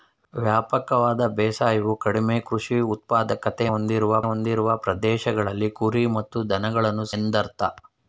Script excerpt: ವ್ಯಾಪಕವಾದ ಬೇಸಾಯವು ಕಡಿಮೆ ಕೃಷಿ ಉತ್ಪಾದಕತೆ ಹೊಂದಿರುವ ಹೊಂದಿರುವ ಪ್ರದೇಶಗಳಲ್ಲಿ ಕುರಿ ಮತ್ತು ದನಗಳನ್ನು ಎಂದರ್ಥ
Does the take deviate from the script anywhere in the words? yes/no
no